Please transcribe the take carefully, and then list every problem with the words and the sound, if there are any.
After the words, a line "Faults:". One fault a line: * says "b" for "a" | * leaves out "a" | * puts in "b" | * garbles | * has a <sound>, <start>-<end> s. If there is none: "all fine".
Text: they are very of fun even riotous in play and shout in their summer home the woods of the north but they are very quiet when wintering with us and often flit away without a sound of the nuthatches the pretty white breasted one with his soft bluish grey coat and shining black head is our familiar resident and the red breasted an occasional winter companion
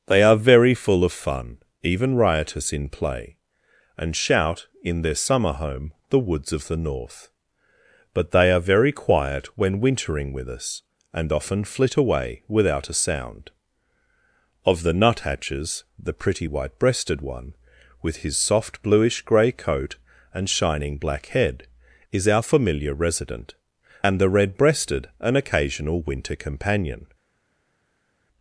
they are very full of fun even riotous in play and shout in their summer home the woods of the north but they are very quiet when wintering with us and often flit away without a sound of the nuthatches the pretty white breasted one with his soft bluish grey coat and shining black head is our familiar resident and the red breasted an occasional winter companion
Faults:
* puts in "full"